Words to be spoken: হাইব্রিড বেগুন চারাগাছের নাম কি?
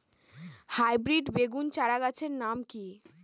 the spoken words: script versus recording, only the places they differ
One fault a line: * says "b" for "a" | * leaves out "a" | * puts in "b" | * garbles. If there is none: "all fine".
all fine